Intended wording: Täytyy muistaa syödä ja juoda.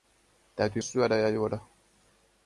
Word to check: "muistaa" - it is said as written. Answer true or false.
false